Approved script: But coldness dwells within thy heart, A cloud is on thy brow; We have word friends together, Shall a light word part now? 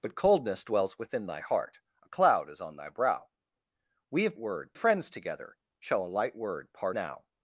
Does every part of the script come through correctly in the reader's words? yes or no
yes